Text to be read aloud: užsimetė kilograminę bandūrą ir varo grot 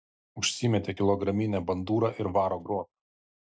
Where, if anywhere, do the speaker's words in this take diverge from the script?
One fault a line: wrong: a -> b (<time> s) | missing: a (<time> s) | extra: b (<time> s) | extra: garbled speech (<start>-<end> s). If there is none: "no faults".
no faults